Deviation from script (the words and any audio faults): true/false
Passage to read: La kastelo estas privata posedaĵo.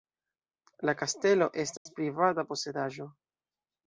true